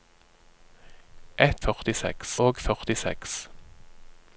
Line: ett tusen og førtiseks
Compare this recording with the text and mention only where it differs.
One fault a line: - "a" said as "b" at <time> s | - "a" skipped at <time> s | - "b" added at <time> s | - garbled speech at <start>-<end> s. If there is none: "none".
- "tusen" said as "førtiseks" at 1.6 s